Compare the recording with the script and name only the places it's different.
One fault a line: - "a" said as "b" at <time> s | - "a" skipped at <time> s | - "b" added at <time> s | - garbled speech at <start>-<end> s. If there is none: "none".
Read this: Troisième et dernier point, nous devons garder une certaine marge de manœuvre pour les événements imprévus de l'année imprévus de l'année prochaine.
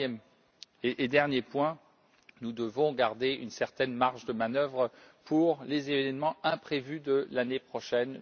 - "imprévus de l'année" skipped at 7.6 s